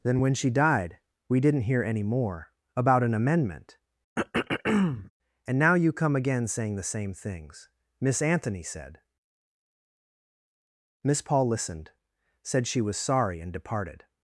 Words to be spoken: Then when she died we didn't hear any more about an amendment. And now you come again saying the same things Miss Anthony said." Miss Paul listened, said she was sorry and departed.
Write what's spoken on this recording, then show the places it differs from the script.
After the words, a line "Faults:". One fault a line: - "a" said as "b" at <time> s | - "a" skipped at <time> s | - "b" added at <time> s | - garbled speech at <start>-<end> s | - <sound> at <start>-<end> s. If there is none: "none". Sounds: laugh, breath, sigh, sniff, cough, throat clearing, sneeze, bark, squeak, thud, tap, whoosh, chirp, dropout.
Then when she died we didn't hear any more about an amendment. And now you come again saying the same things Miss Anthony said." Miss Paul listened, said she was sorry and departed.
Faults:
- throat clearing at 4.2-5.1 s